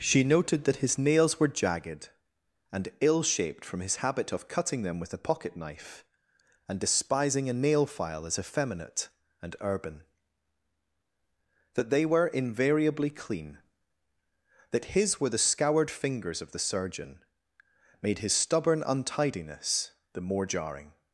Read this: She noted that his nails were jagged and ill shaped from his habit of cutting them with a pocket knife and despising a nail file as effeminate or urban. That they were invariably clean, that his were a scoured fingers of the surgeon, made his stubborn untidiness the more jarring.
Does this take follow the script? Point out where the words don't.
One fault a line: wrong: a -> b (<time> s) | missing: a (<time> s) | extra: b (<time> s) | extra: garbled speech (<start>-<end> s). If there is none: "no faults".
wrong: or -> and (9.4 s)
wrong: a -> the (15.3 s)